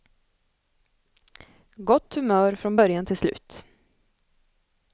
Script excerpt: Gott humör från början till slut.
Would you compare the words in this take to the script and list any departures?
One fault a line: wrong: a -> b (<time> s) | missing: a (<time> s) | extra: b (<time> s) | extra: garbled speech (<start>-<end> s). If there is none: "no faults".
no faults